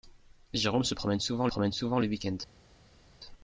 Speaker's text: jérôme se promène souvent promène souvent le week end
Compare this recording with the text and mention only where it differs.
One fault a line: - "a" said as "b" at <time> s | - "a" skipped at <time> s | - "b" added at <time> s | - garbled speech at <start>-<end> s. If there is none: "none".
none